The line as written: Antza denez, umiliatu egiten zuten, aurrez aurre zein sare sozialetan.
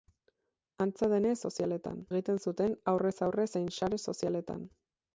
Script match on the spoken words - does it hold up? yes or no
no